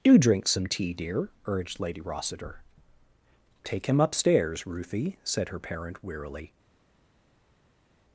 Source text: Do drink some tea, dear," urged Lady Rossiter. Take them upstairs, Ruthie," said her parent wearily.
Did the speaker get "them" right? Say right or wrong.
wrong